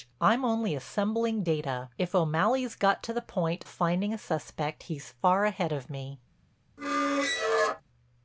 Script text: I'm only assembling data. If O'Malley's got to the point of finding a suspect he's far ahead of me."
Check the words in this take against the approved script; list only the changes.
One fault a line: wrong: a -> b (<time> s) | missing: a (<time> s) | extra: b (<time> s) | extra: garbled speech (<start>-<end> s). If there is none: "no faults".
missing: of (3.7 s)